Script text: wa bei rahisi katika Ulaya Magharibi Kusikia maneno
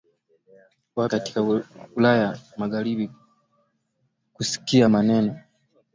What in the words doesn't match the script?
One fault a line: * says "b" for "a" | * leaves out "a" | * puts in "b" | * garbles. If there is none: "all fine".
* leaves out "bei rahisi"